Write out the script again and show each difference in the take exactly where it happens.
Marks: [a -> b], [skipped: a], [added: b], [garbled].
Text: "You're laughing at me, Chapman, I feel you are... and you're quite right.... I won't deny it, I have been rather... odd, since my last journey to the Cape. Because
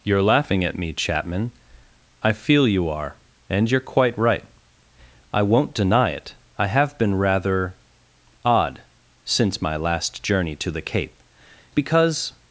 "You're laughing at me, Chapman, I feel you are... and you're quite right.... I won't deny it, I have been rather... odd, since my last journey to the Cape. Because